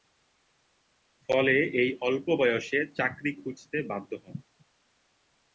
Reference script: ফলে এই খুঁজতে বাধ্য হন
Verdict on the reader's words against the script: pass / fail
fail